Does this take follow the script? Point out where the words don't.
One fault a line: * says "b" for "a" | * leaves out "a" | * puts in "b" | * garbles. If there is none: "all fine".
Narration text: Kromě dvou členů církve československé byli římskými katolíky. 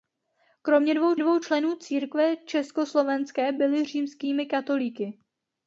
* puts in "dvou"